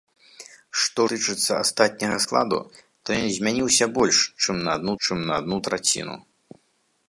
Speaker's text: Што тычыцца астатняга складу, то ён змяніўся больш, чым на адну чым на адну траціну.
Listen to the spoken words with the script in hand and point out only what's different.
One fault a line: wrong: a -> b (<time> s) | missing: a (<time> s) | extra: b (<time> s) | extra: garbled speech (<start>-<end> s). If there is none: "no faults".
no faults